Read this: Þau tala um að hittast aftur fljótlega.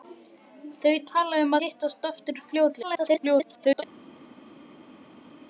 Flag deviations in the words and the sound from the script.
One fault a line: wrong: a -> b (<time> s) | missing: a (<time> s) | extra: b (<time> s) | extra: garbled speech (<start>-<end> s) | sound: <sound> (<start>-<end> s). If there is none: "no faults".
missing: að (1.6 s)
extra: garbled speech (2.8-3.8 s)